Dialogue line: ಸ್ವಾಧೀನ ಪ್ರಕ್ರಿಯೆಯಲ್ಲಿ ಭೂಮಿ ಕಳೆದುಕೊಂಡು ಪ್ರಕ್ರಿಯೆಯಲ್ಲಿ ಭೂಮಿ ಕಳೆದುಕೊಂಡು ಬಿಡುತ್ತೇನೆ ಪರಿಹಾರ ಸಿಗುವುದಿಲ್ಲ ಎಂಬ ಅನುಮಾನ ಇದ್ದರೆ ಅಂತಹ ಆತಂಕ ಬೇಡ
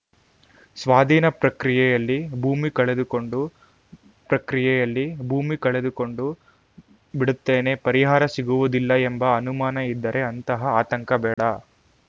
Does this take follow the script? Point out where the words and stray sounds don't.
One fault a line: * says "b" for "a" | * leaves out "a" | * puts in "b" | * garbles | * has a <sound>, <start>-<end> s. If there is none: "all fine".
* has a dropout, 11.3-11.4 s